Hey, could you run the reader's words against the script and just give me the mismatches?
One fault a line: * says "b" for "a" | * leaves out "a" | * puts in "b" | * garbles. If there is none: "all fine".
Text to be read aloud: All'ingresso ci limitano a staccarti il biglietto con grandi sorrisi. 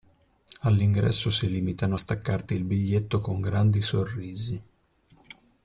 * says "si" for "ci"